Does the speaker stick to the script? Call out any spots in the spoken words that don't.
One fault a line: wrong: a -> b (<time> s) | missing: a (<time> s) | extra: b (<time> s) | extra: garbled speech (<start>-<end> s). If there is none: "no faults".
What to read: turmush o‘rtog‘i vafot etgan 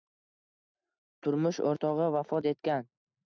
no faults